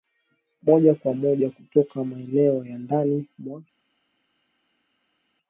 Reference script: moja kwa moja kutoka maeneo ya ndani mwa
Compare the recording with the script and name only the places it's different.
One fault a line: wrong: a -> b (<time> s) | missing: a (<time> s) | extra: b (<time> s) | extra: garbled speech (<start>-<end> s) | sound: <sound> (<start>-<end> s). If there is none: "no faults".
no faults